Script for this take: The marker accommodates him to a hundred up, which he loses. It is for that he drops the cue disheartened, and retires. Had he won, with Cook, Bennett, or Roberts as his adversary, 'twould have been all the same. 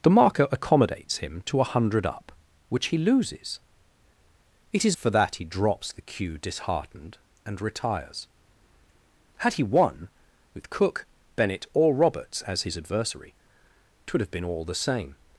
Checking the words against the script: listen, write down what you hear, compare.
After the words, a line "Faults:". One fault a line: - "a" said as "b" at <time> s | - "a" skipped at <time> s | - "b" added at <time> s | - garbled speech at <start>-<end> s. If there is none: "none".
The marker accommodates him to a hundred up, which he loses. It is for that he drops the cue disheartened, and retires. Had he won, with Cook, Bennett, or Roberts as his adversary, 'twould have been all the same.
Faults:
none